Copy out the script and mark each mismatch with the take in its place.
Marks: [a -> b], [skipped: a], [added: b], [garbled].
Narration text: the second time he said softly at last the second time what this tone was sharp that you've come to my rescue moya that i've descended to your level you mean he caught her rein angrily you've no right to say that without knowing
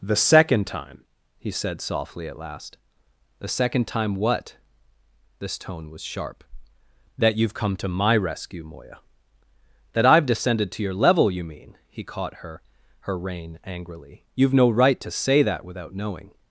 the second time he said softly at last the second time what this tone was sharp that you've come to my rescue moya that i've descended to your level you mean he caught her [added: her] rein angrily you've no right to say that without knowing